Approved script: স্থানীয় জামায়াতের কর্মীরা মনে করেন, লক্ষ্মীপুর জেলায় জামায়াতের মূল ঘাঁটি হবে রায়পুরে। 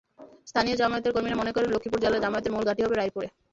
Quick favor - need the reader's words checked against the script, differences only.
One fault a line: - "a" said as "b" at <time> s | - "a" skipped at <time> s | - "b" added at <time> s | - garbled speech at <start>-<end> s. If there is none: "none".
none